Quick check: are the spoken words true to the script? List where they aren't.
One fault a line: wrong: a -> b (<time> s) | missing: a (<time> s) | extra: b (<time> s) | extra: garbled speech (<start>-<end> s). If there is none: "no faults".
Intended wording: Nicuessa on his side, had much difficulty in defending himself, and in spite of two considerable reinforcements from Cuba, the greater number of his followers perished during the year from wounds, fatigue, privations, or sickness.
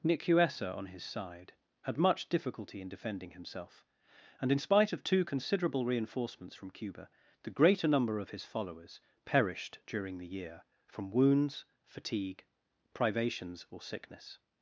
no faults